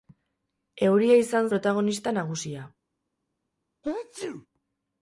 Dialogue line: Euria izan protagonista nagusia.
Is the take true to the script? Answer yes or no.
yes